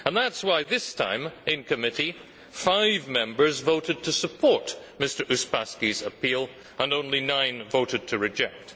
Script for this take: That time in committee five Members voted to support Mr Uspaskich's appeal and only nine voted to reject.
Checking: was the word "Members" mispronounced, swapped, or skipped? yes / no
no